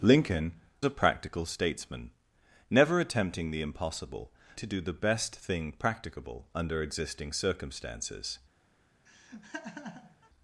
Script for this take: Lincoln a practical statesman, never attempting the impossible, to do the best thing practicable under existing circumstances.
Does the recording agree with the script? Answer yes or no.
yes